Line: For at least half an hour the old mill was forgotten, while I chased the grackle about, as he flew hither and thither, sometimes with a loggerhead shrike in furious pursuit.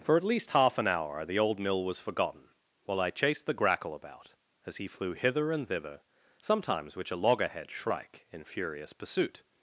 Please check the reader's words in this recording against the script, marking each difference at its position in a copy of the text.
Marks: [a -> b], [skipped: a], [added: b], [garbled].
For at least half an hour the old mill was forgotten, while I chased the grackle about, as he flew hither and thither, sometimes [with -> which] a loggerhead shrike in furious pursuit.